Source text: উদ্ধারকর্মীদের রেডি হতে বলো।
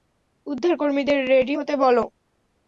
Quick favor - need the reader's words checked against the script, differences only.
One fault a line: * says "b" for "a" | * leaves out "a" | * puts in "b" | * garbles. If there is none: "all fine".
all fine